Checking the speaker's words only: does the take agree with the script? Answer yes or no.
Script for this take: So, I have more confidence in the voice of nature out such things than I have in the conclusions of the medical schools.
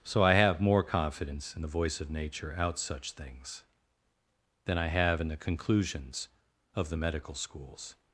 yes